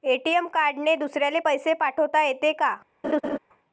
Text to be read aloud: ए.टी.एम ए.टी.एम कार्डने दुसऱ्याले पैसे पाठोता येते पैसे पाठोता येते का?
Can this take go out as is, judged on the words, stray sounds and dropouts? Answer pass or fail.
fail